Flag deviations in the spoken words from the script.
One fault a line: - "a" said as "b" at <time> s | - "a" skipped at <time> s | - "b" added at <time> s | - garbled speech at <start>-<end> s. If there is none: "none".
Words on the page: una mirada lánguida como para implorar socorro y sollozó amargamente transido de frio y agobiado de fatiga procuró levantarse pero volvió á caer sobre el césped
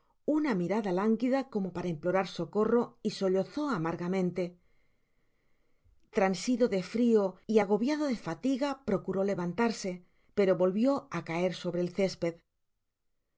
none